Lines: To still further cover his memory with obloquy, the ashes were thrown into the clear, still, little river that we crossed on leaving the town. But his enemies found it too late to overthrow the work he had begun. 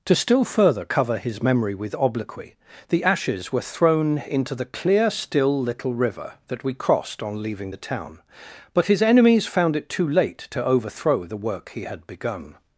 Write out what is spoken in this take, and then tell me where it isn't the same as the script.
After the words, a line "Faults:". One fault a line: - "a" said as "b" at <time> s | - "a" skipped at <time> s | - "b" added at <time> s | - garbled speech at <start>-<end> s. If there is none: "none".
To still further cover his memory with obloquy, the ashes were thrown into the clear, still, little river that we crossed on leaving the town. But his enemies found it too late to overthrow the work he had begun.
Faults:
none